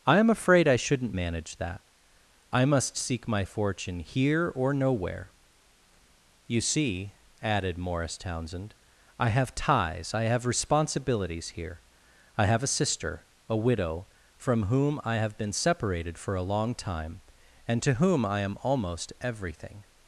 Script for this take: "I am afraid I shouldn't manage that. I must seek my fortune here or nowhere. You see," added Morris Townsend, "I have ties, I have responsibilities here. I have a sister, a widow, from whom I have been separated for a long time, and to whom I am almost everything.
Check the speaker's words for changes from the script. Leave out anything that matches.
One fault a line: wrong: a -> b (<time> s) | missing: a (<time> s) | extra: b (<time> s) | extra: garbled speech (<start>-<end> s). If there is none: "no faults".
no faults